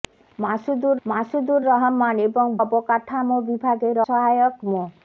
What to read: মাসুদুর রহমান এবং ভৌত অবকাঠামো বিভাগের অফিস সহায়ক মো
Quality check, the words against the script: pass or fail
fail